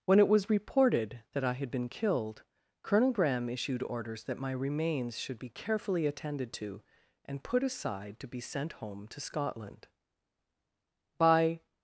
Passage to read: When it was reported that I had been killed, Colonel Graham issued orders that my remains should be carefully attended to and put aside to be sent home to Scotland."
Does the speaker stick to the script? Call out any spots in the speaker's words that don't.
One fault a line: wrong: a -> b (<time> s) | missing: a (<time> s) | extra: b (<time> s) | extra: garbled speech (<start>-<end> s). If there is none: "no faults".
extra: By (11.2 s)